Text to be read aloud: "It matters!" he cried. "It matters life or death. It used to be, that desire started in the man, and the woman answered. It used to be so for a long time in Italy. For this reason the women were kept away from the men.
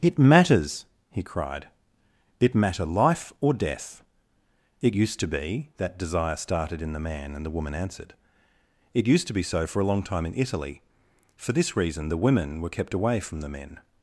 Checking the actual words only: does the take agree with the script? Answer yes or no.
no